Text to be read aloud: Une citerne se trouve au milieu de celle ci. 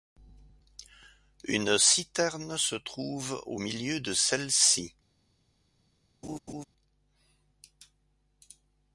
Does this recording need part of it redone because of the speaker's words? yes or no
no